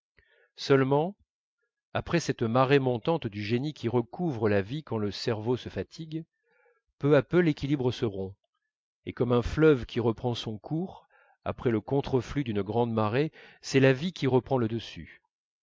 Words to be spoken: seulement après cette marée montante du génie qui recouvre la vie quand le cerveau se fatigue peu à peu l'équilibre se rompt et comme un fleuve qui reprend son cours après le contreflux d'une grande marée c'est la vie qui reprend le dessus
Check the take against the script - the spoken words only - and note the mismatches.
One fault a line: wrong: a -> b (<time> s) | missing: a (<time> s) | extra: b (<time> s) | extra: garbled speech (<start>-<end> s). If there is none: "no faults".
no faults